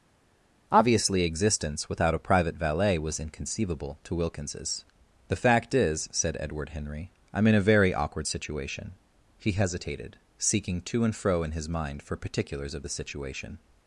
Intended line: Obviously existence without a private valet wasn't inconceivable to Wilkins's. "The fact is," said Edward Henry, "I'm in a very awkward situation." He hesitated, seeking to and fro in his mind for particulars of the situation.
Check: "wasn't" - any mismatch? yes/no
yes